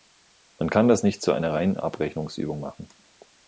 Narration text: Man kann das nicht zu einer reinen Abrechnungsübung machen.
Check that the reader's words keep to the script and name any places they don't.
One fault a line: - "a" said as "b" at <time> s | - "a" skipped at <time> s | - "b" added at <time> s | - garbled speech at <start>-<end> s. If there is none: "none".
none